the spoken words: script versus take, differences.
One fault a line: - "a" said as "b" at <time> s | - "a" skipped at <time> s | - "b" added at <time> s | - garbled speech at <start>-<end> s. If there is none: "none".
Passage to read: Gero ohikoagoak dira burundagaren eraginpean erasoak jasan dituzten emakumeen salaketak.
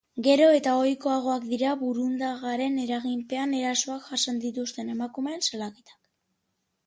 - "eta" added at 0.6 s